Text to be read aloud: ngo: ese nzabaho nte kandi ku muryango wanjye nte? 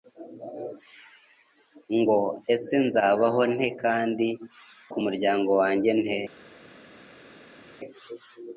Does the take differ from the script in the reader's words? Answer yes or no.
no